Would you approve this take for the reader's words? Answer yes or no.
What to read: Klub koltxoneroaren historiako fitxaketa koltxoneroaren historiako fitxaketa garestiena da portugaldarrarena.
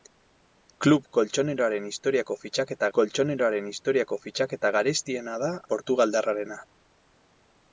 yes